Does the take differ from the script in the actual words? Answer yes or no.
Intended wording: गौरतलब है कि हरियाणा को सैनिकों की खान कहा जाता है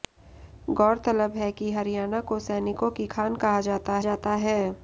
yes